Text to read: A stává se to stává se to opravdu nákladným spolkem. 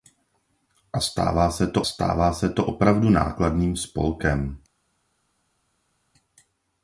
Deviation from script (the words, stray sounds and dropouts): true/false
false